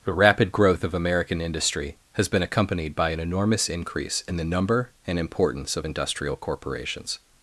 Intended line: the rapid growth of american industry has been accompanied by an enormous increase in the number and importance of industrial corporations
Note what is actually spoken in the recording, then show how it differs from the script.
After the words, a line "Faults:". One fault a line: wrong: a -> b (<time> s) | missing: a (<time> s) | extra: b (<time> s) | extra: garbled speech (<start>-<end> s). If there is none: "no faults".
the rapid growth of american industry has been accompanied by an enormous increase in the number and importance of industrial corporations
Faults:
no faults